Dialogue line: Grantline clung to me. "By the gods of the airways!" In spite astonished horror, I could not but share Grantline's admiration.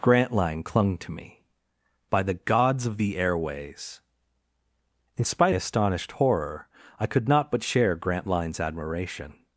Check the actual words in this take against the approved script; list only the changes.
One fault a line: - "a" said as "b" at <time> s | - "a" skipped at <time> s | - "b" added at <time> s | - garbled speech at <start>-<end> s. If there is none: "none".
none